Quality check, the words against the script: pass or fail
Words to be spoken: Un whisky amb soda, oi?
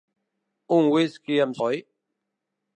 fail